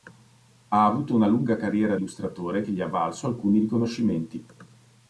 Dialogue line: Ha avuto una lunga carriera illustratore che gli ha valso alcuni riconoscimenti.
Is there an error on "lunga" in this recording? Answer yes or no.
no